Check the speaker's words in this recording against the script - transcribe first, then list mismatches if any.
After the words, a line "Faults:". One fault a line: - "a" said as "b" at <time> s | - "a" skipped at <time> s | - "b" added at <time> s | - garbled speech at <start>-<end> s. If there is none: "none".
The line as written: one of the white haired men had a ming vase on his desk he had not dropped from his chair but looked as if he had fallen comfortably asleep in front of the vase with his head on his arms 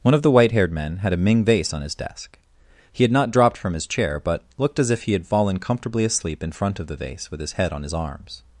one of the white haired men had a ming vase on his desk he had not dropped from his chair but looked as if he had fallen comfortably asleep in front of the vase with his head on his arms
Faults:
none